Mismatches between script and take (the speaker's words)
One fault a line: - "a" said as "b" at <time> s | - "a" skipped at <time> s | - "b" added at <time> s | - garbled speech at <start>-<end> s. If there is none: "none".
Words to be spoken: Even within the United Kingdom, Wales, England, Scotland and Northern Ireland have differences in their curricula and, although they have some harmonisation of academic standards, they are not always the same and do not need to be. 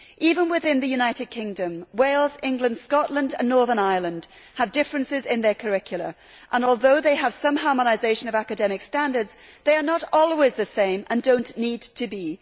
none